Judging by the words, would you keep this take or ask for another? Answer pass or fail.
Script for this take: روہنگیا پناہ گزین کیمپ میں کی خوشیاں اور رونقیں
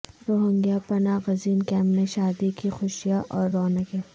fail